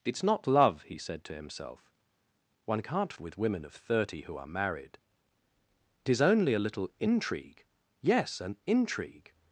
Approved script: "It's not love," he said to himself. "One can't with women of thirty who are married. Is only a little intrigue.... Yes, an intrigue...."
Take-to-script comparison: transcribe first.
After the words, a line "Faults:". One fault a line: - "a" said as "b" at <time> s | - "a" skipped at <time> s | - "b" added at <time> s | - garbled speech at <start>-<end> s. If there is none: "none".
"It's not love," he said to himself. "One can't with women of thirty who are married. Is only a little intrigue.... Yes, an intrigue...."
Faults:
none